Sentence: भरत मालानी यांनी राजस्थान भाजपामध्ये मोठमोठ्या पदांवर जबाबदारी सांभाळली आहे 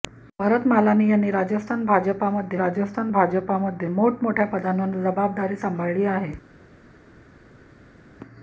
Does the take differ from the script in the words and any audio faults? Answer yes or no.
yes